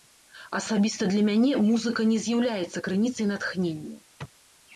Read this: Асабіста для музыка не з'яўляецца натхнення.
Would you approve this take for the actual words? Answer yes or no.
no